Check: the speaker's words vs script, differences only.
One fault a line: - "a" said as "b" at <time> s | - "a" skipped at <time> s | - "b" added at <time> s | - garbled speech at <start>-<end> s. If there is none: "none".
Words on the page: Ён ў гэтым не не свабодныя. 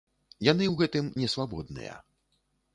- "Ён" said as "Яны" at 0.5 s
- "не" skipped at 1.3 s